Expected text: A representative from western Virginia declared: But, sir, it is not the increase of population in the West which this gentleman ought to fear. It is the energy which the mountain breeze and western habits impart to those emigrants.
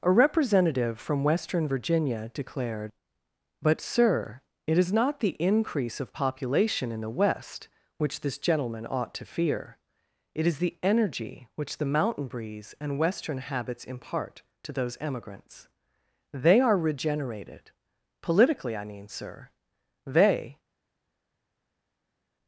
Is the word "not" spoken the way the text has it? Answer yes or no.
yes